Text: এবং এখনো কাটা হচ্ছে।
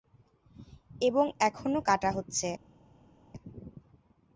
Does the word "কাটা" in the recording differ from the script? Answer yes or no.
no